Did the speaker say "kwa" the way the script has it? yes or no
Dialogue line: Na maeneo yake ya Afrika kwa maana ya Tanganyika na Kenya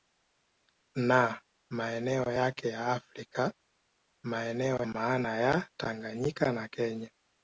no